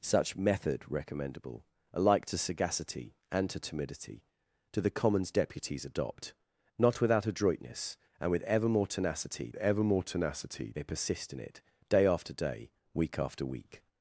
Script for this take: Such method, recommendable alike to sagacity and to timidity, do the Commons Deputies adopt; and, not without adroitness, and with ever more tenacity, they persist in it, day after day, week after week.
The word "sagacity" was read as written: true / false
true